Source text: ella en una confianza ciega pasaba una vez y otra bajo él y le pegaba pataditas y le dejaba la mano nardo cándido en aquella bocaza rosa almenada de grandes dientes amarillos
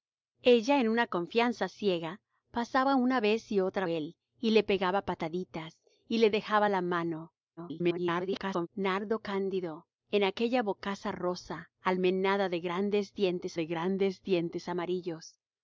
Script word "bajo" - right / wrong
wrong